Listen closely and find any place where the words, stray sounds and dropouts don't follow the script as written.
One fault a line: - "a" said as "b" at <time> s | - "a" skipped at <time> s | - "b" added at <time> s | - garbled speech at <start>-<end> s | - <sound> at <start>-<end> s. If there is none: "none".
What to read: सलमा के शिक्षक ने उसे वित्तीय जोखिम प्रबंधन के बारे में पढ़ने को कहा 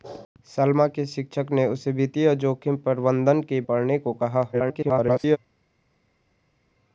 - "बारे में" skipped at 3.6 s
- garbled speech at 4.5-5.4 s